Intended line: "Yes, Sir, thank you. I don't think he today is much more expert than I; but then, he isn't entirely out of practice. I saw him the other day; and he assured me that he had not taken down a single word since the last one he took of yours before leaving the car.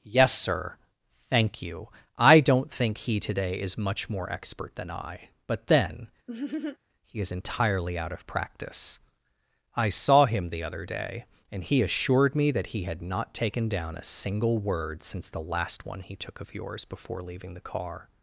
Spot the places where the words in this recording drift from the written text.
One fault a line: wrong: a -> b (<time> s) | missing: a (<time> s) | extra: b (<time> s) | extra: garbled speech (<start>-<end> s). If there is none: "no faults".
wrong: isn't -> is (7.2 s)